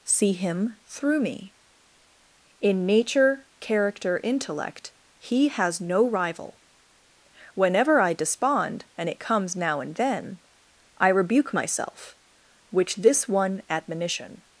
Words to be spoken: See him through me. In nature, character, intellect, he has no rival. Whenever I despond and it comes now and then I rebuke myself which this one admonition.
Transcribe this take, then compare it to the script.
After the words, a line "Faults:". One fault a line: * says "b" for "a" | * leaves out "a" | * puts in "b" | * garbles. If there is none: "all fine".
See him through me. In nature, character, intellect, he has no rival. Whenever I despond and it comes now and then I rebuke myself which this one admonition.
Faults:
all fine